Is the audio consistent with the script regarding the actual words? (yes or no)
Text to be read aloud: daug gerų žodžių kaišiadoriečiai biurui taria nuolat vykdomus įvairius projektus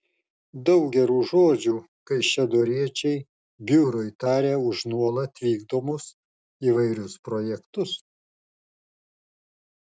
no